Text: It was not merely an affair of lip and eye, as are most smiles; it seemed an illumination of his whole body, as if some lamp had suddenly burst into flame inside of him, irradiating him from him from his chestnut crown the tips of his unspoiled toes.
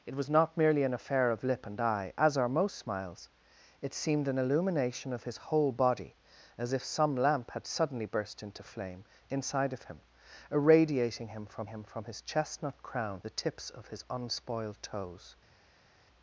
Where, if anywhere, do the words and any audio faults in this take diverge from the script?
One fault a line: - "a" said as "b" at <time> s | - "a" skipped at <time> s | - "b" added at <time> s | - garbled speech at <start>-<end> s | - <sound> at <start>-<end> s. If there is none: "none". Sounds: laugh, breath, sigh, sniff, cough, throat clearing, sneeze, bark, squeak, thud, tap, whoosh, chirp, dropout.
none